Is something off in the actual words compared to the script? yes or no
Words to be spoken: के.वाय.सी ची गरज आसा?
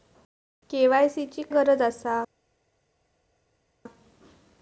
no